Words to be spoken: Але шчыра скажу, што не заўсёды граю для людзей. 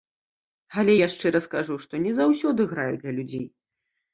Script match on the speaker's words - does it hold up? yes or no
no